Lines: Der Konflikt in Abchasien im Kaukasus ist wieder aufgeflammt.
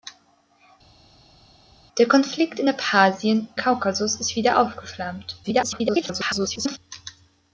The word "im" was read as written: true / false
false